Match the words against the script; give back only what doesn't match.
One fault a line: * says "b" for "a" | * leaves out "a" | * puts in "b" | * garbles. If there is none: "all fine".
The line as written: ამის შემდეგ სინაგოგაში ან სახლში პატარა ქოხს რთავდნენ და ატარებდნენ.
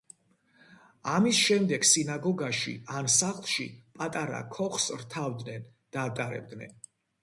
all fine